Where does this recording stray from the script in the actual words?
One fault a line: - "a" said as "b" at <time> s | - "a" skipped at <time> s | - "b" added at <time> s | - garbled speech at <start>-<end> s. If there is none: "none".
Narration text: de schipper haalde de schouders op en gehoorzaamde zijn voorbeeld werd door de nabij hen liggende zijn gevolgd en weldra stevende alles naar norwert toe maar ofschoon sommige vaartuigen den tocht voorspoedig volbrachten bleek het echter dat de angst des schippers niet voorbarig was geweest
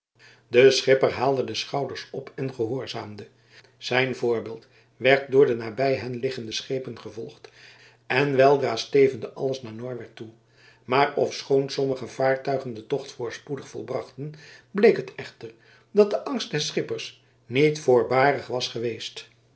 - "zijn" said as "schepen" at 6.5 s